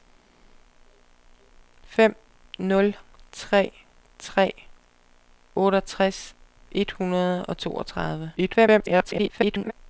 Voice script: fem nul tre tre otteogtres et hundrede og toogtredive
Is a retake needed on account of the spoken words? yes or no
yes